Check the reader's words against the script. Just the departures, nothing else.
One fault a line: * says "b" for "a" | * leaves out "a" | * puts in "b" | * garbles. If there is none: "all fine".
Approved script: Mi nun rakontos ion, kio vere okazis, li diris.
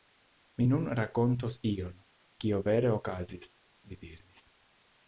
all fine